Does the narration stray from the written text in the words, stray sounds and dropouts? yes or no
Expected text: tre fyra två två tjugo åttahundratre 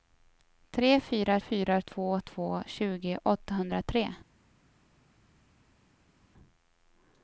yes